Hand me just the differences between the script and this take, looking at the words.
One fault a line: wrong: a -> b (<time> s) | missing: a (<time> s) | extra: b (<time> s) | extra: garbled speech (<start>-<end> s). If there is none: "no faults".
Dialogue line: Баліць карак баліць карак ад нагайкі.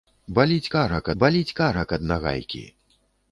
no faults